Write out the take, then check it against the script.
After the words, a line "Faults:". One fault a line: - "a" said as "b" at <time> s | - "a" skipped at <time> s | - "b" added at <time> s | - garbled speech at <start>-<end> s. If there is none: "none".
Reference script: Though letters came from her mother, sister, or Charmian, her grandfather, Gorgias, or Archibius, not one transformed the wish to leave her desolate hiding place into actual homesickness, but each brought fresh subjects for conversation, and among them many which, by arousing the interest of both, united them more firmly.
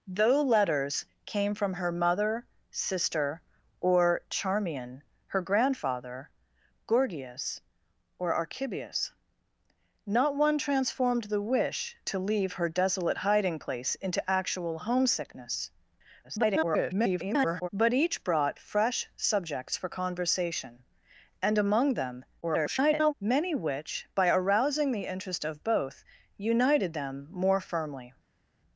Though letters came from her mother, sister, or Charmian, her grandfather, Gorgias, or Archibius, not one transformed the wish to leave her desolate hiding place into actual homesickness, [garbled] but each brought fresh subjects for conversation, and among them [garbled] many which, by arousing the interest of both, united them more firmly.
Faults:
- garbled speech at 16.2-17.7 s
- garbled speech at 22.4-23.1 s